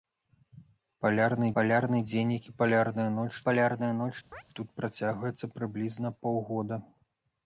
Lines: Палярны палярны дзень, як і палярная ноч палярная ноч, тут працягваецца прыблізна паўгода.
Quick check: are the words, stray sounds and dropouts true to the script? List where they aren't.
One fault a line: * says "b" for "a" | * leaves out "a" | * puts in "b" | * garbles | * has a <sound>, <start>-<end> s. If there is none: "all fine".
* has a chirp, 4.3-4.4 s